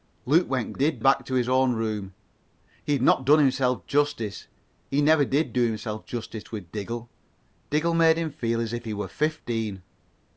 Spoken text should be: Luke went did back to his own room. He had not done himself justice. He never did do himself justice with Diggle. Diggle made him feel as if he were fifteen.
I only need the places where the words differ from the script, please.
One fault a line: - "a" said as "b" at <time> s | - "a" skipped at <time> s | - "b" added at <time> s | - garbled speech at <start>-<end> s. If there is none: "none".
none